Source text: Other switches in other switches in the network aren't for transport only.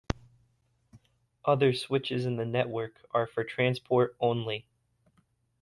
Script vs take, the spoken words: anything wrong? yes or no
yes